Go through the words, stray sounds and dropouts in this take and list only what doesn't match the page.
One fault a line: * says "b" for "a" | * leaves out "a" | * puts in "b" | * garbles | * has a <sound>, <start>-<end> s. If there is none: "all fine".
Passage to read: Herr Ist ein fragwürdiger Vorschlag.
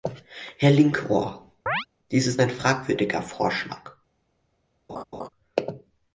* puts in "Linkohr dies"
* has a chirp, 1.7-1.9 s
* has a laugh, 4.9-5.3 s